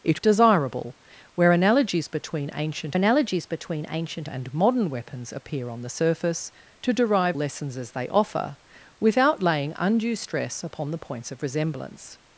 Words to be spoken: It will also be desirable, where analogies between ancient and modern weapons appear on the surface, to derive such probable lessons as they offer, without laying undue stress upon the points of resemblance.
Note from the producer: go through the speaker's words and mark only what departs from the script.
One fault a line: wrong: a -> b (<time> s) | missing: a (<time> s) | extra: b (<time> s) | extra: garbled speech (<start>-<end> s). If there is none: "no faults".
wrong: will also be desirable where -> desirable where analogies between ancient (0.2 s)
missing: such probable (7.4 s)